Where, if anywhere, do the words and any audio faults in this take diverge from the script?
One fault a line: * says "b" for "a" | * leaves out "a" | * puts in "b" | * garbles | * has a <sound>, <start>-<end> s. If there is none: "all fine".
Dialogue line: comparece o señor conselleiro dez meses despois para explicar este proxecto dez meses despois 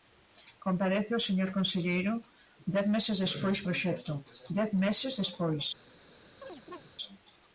* leaves out "para explicar este"
* has a chirp, 6.4-6.9 s